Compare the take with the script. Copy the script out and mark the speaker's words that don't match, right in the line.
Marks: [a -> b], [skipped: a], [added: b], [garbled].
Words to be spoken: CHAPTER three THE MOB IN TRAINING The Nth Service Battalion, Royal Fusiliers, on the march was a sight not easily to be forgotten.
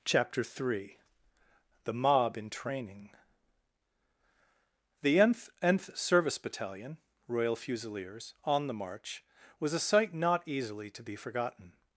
CHAPTER three THE MOB IN TRAINING The Nth [added: Nth] Service Battalion, Royal Fusiliers, on the march was a sight not easily to be forgotten.